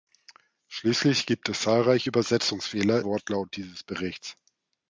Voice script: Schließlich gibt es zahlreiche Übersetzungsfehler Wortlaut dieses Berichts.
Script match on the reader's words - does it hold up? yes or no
yes